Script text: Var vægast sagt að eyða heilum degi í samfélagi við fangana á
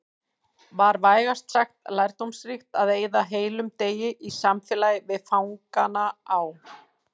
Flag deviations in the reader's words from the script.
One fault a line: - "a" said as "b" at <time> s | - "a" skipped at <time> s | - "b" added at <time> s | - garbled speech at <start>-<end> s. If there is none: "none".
- "lærdómsríkt" added at 2.0 s